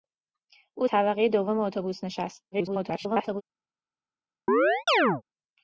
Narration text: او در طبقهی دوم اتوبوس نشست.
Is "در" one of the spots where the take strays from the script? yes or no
yes